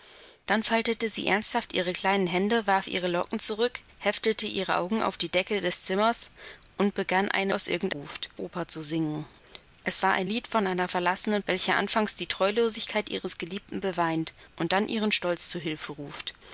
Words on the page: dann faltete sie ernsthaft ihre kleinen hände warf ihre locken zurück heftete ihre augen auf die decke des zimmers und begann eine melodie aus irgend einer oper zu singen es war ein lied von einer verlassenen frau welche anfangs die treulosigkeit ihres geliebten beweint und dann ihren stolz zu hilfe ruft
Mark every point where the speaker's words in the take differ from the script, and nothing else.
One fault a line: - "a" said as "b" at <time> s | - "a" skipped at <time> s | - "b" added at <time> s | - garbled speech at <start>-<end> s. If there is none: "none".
- "melodie" skipped at 7.5 s
- "einer" said as "ruft" at 7.9 s
- "frau" skipped at 11.4 s